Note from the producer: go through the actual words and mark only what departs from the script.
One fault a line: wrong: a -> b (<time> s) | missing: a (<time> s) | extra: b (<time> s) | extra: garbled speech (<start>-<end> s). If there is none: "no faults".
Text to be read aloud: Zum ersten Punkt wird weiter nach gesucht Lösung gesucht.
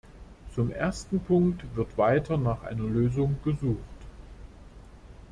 wrong: gesucht -> einer (2.6 s)